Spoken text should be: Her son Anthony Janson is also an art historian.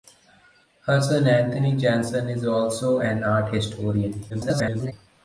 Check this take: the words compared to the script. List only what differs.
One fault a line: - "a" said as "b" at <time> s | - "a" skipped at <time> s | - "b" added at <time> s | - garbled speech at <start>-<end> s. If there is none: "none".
- garbled speech at 4.3-4.9 s